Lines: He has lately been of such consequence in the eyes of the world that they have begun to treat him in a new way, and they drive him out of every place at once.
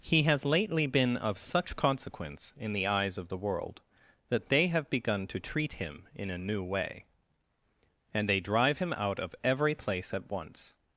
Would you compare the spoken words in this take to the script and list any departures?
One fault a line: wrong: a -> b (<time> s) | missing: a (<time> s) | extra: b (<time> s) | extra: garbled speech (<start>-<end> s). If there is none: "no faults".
no faults